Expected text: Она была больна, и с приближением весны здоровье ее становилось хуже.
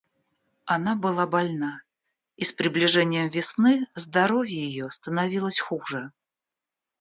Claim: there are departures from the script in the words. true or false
false